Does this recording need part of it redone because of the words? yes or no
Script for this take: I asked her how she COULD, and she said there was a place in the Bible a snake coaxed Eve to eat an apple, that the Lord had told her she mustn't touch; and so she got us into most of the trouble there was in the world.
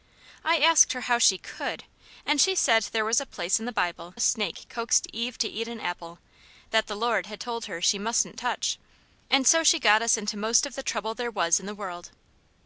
no